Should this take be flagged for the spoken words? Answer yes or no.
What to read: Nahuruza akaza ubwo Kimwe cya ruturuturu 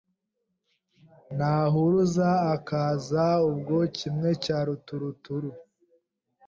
no